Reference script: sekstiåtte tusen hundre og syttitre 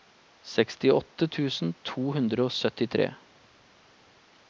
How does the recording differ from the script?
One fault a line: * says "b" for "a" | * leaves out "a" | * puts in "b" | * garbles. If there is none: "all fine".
* puts in "to"